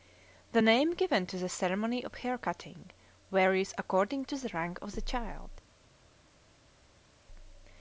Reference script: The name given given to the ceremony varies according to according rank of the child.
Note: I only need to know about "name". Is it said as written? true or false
true